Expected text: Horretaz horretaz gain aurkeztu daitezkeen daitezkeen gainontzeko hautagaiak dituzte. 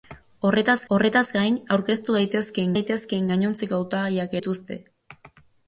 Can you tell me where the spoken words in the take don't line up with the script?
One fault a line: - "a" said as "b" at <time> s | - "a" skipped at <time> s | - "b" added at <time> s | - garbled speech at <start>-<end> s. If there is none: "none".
none